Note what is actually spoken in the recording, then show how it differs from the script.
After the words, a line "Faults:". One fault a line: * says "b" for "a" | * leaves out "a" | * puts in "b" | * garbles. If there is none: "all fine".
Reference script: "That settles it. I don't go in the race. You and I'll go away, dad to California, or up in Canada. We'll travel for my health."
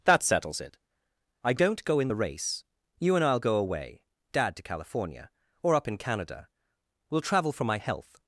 "That settles it. I don't go in the race. You and I'll go away, dad to California, or up in Canada. We'll travel for my health."
Faults:
all fine